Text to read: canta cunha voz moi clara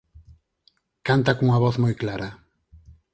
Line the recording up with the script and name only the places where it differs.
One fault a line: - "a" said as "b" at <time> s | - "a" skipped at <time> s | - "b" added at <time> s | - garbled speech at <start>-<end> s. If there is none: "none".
none